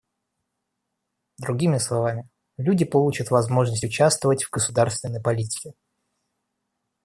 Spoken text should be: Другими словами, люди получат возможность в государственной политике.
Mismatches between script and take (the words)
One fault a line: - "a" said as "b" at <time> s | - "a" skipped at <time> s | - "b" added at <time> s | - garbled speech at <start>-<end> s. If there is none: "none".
- "участвовать" added at 3.8 s